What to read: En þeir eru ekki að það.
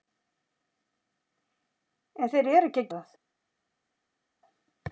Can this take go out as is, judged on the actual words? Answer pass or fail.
pass